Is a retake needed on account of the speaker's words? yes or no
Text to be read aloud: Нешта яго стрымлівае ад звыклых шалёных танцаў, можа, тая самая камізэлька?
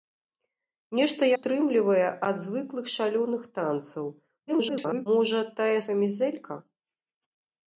yes